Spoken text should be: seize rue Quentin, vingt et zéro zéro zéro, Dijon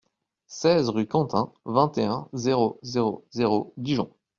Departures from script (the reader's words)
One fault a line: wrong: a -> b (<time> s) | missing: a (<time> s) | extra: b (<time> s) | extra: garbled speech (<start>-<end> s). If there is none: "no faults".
extra: un (2.0 s)